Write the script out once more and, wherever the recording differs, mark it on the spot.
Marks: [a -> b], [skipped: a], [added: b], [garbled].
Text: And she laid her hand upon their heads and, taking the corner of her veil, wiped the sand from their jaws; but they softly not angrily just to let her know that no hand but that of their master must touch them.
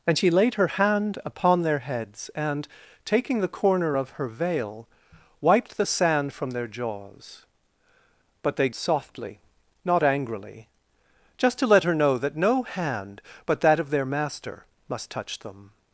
And she laid her hand upon their heads and, taking the corner of her veil, wiped the sand from their jaws; but they softly not angrily just to let her know that no hand but that of their master must touch them.